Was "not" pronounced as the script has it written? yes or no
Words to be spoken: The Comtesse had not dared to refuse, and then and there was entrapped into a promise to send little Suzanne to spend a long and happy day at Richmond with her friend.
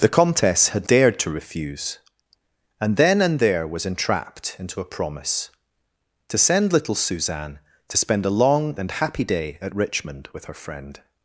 no